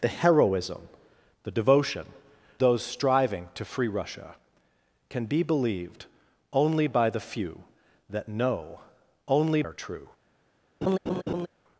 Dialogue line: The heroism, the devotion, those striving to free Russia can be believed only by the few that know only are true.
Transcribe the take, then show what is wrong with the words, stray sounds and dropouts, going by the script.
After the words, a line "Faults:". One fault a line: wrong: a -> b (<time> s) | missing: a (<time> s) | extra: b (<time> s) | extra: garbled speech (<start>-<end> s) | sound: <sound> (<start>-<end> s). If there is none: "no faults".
The heroism, the devotion, those striving to free Russia can be believed only by the few that know only are true.
Faults:
sound: laugh (10.8-11.5 s)